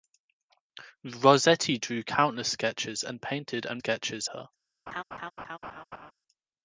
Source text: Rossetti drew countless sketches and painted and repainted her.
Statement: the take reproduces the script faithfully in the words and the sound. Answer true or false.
false